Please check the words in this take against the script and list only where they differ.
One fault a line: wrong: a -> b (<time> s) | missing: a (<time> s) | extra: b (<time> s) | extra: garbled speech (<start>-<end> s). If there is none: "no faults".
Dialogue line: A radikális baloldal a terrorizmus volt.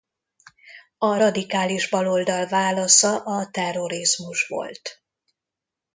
extra: válasza (2.5 s)